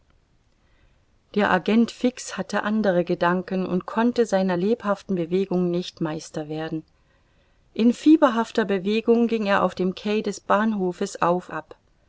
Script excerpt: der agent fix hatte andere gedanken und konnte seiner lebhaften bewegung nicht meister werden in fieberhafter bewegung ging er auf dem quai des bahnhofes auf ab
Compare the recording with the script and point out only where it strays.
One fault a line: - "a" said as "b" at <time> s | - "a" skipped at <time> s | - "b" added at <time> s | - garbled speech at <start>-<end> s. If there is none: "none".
none